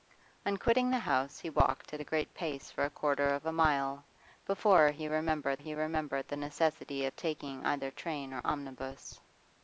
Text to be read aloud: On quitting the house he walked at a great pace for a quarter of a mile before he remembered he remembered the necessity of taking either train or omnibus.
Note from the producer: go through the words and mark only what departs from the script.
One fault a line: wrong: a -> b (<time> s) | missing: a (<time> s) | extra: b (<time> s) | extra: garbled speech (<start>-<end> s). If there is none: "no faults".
no faults